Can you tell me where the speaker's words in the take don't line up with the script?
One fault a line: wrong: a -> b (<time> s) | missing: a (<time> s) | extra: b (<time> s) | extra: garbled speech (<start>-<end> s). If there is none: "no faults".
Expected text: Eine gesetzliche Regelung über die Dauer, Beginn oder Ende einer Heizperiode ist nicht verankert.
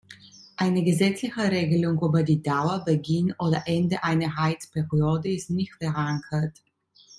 no faults